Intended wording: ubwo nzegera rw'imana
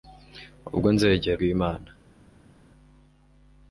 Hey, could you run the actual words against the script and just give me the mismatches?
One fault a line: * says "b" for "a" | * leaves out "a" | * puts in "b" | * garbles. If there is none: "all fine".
all fine